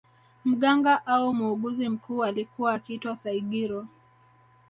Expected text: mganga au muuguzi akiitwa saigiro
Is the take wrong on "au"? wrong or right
right